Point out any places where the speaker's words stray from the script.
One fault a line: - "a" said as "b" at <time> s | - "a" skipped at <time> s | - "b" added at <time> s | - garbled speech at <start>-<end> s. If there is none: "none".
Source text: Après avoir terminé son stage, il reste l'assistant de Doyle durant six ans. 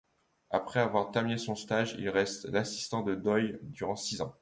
none